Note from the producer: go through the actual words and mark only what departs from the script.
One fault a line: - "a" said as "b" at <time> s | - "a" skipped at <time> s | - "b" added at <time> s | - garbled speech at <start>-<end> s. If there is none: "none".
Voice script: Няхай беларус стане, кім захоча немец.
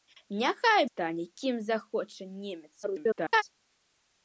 - "беларус" skipped at 0.8 s
- garbled speech at 2.8-3.4 s